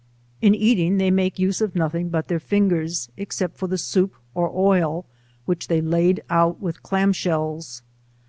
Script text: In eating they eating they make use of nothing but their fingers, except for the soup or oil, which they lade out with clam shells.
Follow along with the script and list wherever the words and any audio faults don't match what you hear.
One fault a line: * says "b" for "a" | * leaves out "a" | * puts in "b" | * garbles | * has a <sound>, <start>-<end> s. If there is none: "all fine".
* leaves out "eating they"